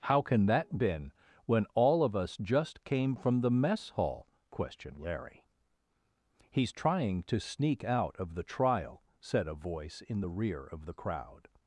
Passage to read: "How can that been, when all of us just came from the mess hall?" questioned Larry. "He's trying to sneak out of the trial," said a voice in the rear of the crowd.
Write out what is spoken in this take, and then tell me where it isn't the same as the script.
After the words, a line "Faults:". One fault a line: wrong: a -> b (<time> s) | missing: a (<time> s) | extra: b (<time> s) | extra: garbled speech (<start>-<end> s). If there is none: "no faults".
"How can that been, when all of us just came from the mess hall?" questioned Larry. "He's trying to sneak out of the trial," said a voice in the rear of the crowd.
Faults:
no faults